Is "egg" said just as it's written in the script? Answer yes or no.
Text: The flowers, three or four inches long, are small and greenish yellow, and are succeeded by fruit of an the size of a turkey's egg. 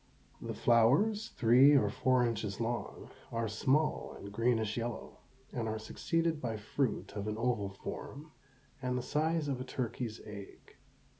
yes